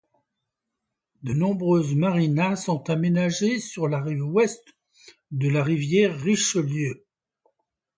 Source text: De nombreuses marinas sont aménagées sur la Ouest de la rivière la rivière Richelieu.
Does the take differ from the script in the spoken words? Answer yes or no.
yes